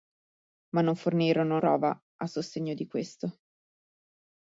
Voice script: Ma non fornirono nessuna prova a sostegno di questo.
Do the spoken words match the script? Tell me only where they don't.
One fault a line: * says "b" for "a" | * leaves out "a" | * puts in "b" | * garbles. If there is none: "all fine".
* leaves out "nessuna"